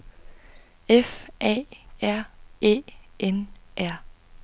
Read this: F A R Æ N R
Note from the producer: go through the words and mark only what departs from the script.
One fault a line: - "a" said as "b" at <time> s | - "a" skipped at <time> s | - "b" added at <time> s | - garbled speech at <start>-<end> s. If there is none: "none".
none